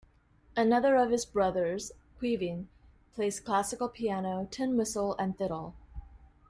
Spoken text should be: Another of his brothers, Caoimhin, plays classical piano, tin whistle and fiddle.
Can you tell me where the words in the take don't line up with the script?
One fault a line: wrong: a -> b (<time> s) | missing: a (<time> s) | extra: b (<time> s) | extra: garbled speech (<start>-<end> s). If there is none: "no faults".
no faults